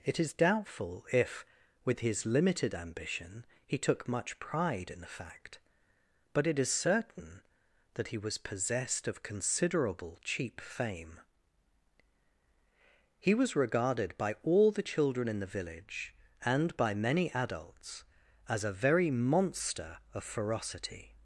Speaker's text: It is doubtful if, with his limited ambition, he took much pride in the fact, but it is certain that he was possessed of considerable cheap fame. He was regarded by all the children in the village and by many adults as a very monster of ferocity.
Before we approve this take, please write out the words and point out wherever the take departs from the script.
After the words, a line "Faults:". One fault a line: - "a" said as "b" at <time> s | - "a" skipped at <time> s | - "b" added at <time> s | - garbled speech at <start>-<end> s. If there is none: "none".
It is doubtful if, with his limited ambition, he took much pride in the fact, but it is certain that he was possessed of considerable cheap fame. He was regarded by all the children in the village and by many adults as a very monster of ferocity.
Faults:
none